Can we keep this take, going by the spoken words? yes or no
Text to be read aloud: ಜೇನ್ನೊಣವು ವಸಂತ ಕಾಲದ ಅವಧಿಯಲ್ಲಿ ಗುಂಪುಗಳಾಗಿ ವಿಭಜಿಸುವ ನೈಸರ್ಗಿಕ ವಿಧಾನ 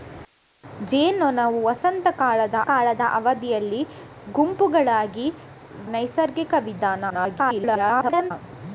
no